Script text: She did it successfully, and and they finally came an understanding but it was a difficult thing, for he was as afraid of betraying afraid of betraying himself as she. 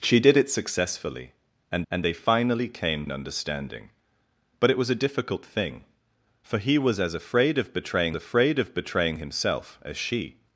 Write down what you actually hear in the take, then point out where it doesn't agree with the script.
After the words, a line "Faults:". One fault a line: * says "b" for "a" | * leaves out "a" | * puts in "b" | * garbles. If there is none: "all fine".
She did it successfully, and and they finally came an understanding but it was a difficult thing, for he was as afraid of betraying afraid of betraying himself as she.
Faults:
all fine